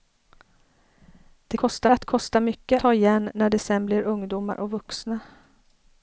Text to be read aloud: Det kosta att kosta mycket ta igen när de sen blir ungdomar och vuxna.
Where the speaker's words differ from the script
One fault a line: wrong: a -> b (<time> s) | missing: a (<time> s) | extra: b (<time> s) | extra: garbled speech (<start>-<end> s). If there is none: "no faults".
no faults